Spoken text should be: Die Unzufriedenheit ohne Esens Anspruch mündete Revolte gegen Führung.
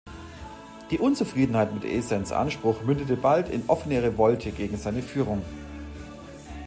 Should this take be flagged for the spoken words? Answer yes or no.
yes